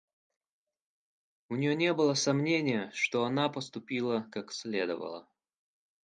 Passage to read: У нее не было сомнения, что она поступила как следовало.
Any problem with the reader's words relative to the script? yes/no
no